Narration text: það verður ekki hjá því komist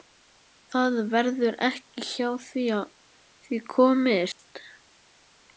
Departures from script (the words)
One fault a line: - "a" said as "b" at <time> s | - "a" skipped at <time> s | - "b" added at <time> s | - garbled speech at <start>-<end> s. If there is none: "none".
none